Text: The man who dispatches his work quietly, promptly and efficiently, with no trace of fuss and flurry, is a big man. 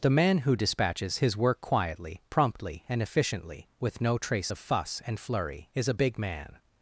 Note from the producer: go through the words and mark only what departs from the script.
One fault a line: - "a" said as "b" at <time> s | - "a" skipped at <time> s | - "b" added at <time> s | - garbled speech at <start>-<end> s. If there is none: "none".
none